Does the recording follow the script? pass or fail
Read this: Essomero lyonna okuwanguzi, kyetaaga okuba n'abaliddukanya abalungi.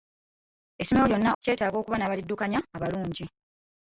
fail